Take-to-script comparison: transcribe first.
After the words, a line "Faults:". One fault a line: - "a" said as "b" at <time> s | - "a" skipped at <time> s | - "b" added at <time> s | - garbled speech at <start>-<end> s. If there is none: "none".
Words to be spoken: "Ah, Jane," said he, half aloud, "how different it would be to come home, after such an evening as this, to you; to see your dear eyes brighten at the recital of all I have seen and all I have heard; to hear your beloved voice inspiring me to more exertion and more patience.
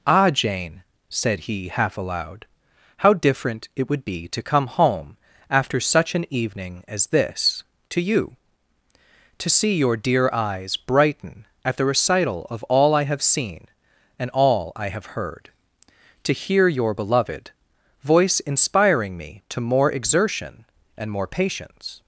"Ah, Jane," said he, half aloud, "how different it would be to come home, after such an evening as this, to you; to see your dear eyes brighten at the recital of all I have seen and all I have heard; to hear your beloved voice inspiring me to more exertion and more patience.
Faults:
none